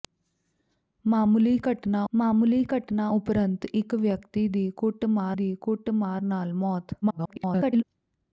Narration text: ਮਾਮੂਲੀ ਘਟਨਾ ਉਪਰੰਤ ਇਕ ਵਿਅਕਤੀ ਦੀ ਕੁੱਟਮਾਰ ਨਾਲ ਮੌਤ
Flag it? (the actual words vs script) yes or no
yes